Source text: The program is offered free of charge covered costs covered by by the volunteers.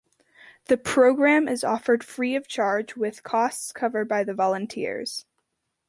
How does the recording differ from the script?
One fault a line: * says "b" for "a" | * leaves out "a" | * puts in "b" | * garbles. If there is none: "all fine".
* says "with" for "covered"
* leaves out "by"